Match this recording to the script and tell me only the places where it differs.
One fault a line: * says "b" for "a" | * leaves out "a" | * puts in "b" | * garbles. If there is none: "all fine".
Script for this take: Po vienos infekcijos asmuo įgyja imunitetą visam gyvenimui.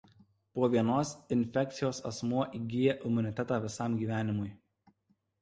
all fine